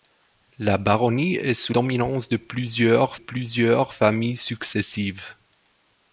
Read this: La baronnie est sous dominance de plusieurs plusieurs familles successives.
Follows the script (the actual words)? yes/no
yes